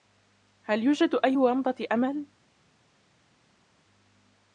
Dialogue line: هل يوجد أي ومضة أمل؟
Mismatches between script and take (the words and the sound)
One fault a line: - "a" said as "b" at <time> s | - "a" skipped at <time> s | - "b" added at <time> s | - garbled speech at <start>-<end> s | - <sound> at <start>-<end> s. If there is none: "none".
none